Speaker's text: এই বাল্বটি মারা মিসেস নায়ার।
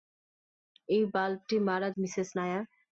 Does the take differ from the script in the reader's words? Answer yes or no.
no